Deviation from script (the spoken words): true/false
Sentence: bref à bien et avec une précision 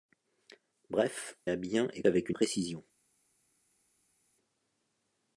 false